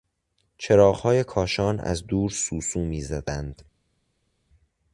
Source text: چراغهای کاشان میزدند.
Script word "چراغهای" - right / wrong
right